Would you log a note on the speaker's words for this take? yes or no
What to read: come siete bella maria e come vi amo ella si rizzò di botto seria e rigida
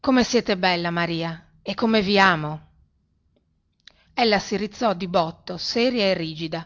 no